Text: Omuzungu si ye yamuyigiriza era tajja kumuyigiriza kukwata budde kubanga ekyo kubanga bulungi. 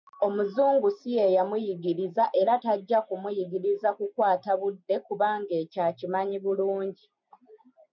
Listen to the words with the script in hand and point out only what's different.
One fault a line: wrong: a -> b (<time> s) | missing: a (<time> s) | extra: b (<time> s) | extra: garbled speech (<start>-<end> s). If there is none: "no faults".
wrong: kubanga -> akimanyi (5.9 s)